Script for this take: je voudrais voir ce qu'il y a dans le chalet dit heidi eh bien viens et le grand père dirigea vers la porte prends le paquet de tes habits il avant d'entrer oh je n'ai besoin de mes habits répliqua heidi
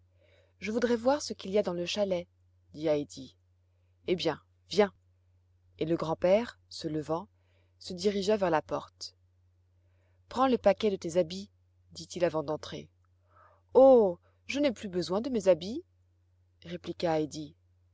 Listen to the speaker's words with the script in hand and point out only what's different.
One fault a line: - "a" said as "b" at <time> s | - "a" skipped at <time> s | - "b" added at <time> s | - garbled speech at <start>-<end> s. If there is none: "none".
- "se levant se" added at 6.7 s
- "dit" added at 11.9 s
- "plus" added at 14.7 s